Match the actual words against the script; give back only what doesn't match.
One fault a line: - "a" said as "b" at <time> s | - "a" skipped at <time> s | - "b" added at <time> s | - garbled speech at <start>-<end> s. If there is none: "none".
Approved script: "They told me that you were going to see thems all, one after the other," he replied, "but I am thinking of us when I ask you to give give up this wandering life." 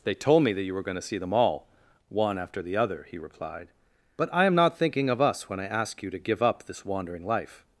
- "thems" said as "them" at 1.2 s
- "not" added at 4.5 s
- "give" skipped at 6.4 s